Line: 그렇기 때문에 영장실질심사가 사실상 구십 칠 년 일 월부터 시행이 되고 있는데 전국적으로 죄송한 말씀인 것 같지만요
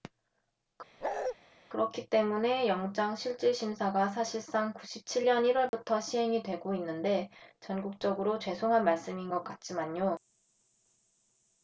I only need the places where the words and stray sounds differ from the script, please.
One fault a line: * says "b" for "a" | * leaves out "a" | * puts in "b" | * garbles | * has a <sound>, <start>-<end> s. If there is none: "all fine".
* has a bark, 1.0-1.4 s
* has a dropout, 5.7-5.7 s